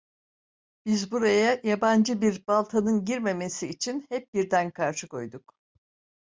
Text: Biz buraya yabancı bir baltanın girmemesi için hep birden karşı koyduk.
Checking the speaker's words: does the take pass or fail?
pass